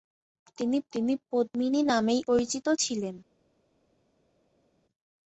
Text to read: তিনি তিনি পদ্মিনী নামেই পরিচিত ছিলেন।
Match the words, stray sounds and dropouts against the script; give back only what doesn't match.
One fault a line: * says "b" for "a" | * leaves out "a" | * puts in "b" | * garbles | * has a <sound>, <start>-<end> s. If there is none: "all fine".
all fine